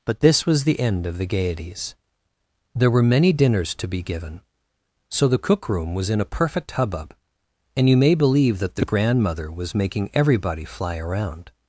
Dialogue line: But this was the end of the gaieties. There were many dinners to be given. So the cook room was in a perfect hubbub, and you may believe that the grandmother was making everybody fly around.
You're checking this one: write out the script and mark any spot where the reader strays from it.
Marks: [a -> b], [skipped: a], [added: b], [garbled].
But this was the end of the gaieties. There were many dinners to be given. So the cook room was in a perfect hubbub, and you may believe that the grandmother was making everybody fly around.